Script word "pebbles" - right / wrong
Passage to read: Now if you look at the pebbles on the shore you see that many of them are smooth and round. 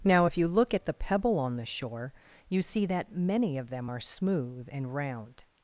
wrong